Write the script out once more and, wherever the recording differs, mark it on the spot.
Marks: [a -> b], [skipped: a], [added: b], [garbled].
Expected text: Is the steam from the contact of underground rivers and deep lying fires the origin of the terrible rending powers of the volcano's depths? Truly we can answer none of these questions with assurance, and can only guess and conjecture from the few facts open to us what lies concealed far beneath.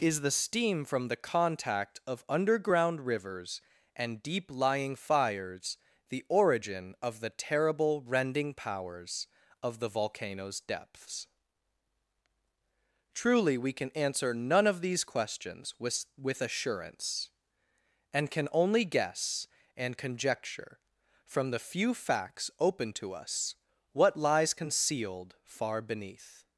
Is the steam from the contact of underground rivers and deep lying fires the origin of the terrible rending powers of the volcano's depths? Truly we can answer none of these questions with [added: with] assurance, and can only guess and conjecture from the few facts open to us what lies concealed far beneath.